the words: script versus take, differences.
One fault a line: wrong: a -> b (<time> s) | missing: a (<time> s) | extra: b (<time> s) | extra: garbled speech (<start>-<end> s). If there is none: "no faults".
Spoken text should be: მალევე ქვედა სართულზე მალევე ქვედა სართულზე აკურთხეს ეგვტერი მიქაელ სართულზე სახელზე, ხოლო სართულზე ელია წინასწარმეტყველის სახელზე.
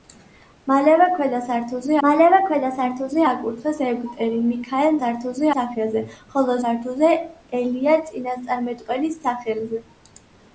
no faults